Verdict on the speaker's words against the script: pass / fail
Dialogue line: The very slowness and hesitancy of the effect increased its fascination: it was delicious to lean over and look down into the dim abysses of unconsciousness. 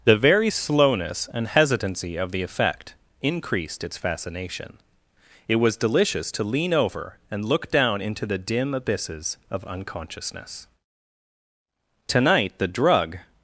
fail